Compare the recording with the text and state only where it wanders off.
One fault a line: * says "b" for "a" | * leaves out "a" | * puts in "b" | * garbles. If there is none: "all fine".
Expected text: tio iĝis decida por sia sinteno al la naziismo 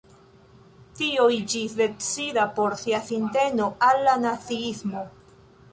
all fine